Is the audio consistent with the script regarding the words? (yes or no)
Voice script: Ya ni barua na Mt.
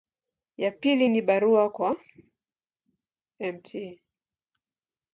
no